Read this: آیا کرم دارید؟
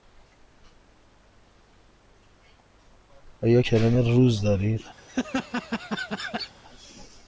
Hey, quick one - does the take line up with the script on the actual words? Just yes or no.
no